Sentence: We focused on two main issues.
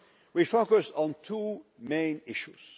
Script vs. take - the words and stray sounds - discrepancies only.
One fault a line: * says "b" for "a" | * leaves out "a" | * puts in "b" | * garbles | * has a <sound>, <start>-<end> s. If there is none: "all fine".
all fine